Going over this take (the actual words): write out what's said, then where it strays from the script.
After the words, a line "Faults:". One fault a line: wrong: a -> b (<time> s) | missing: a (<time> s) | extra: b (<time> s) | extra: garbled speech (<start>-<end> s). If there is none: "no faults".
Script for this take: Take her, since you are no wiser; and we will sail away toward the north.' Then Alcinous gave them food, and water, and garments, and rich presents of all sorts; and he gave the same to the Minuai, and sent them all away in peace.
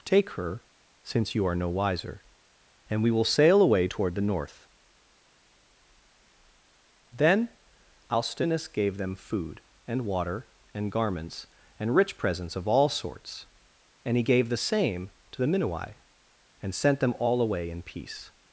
Take her, since you are no wiser; and we will sail away toward the north.' Then Alcinous gave them food, and water, and garments, and rich presents of all sorts; and he gave the same to the Minuai, and sent them all away in peace.
Faults:
no faults